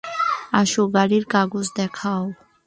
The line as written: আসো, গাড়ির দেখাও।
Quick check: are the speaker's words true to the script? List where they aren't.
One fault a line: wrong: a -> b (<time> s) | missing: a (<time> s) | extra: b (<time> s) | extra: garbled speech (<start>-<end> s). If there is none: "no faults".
extra: কাগজ (1.3 s)